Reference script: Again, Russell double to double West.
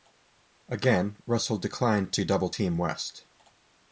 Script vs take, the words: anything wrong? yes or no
yes